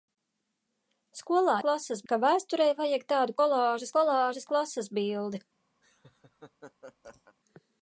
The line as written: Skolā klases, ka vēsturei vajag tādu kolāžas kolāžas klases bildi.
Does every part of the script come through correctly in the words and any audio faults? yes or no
no